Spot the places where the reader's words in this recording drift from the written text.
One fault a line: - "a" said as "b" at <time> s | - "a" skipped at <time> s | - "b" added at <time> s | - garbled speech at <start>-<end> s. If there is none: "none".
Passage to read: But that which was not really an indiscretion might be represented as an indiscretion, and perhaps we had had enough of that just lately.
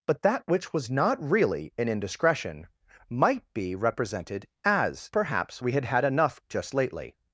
- "an indiscretion and" skipped at 5.1 s
- "of that" skipped at 6.4 s